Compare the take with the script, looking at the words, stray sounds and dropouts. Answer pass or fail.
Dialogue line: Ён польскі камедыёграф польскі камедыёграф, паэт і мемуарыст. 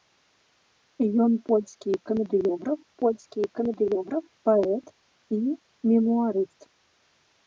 pass